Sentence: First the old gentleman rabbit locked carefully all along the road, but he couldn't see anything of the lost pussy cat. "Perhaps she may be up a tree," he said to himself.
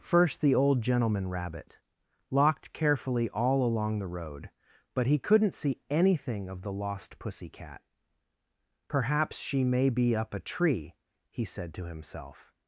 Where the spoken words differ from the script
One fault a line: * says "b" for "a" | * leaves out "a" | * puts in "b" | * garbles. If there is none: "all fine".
all fine